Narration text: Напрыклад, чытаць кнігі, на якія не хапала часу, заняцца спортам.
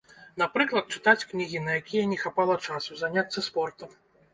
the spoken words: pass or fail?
pass